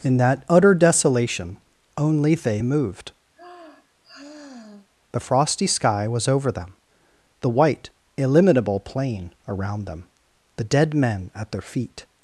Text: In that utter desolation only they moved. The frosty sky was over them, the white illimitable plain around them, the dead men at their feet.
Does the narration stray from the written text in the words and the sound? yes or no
yes